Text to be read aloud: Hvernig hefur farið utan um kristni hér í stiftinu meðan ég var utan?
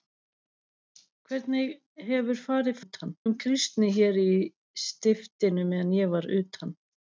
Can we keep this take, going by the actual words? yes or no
yes